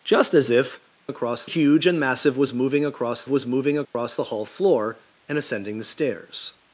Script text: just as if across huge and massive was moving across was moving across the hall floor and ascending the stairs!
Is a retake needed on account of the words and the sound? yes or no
yes